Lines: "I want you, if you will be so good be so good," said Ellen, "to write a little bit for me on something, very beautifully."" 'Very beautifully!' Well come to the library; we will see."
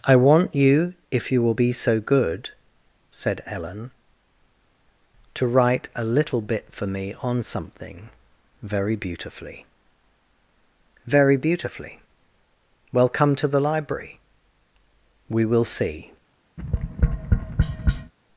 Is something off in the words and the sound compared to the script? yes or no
yes